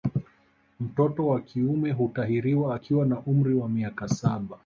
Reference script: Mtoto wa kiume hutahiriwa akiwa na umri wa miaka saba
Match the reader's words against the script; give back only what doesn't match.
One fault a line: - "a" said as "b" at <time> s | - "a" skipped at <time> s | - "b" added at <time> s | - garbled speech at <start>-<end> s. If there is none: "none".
none